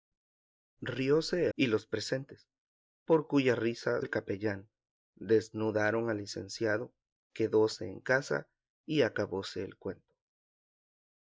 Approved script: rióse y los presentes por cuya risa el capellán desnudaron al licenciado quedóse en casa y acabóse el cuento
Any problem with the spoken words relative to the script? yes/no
no